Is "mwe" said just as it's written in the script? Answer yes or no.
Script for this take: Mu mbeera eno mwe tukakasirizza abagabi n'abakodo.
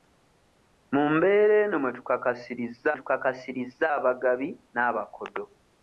yes